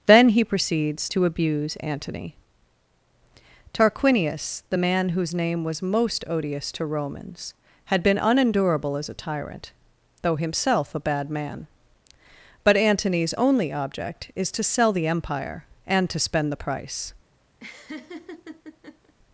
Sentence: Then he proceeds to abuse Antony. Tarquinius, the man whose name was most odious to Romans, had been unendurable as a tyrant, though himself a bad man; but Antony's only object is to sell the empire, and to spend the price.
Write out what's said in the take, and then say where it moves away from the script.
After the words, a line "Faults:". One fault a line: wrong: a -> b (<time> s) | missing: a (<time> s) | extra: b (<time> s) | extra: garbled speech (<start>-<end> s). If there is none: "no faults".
Then he proceeds to abuse Antony. Tarquinius, the man whose name was most odious to Romans, had been unendurable as a tyrant, though himself a bad man; but Antony's only object is to sell the empire, and to spend the price.
Faults:
no faults